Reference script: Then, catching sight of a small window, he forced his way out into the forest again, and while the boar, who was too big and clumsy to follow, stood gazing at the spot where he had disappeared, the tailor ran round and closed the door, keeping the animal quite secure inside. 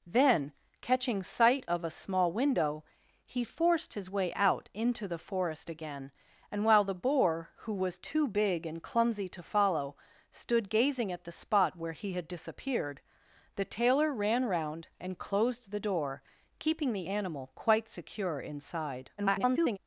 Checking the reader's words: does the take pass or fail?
fail